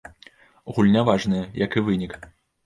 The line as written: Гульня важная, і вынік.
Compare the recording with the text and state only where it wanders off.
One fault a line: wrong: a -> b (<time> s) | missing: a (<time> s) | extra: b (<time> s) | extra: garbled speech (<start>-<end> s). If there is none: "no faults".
extra: як (1.6 s)